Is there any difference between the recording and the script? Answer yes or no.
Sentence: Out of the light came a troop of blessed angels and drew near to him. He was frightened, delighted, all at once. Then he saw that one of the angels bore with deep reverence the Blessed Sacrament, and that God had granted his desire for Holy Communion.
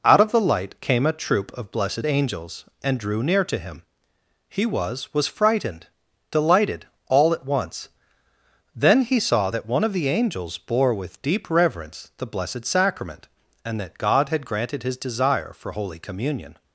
yes